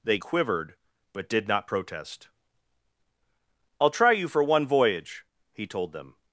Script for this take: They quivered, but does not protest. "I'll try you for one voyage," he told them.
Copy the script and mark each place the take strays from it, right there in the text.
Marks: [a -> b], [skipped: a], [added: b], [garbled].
They quivered, but [does -> did] not protest. "I'll try you for one voyage," he told them.